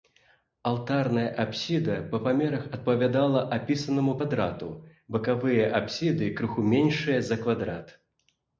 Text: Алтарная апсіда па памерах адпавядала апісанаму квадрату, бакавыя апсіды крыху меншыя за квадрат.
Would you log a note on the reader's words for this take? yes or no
no